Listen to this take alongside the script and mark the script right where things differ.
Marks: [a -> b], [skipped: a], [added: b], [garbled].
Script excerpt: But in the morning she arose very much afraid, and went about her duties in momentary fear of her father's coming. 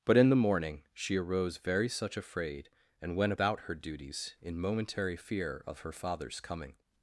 But in the morning she arose very [much -> such] afraid, and went about her duties in momentary fear of her father's coming.